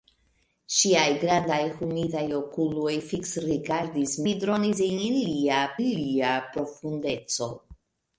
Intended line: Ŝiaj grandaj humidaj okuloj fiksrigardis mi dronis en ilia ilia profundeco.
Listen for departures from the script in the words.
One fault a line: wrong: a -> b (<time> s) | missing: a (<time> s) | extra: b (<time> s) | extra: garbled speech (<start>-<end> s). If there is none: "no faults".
no faults